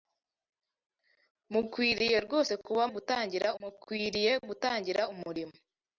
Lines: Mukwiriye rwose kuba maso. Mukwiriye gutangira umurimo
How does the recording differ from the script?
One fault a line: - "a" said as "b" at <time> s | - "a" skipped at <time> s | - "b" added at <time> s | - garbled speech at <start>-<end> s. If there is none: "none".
- "maso" said as "gutangira" at 2.9 s